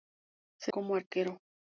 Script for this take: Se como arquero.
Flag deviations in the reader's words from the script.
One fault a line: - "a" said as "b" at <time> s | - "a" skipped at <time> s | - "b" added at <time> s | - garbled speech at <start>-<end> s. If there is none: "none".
none